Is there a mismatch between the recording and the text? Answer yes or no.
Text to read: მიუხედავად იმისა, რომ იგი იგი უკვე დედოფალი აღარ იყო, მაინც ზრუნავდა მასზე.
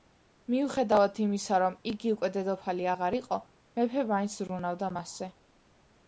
yes